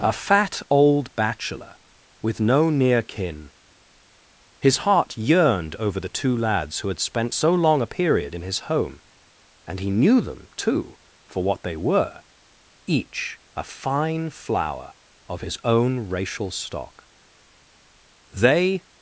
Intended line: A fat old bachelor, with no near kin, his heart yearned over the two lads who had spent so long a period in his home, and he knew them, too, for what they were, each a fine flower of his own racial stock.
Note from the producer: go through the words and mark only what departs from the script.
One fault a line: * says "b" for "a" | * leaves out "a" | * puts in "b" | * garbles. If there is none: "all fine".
* puts in "They"